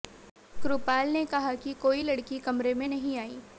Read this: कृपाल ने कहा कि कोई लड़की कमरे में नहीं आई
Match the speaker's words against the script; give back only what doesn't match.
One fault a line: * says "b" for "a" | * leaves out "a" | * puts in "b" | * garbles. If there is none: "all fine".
all fine